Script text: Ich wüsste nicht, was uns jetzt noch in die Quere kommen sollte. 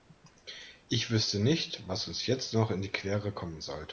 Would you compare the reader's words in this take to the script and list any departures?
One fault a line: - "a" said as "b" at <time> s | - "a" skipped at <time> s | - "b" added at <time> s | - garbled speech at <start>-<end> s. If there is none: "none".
none